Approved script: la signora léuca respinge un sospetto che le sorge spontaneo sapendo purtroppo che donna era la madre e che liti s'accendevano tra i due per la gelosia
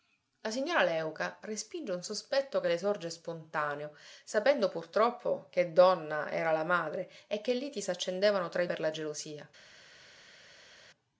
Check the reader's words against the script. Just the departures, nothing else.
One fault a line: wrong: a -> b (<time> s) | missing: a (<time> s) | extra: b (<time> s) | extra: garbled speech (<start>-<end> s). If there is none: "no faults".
missing: due (8.7 s)